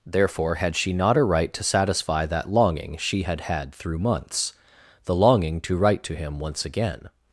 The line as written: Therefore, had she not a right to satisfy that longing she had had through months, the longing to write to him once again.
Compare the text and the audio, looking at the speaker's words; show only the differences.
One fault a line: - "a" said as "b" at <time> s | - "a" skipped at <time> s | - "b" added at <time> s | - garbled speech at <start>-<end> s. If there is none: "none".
none